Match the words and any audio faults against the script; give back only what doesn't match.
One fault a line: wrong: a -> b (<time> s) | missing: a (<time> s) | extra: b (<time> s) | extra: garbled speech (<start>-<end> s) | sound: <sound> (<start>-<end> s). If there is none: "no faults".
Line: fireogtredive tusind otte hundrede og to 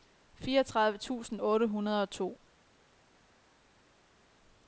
no faults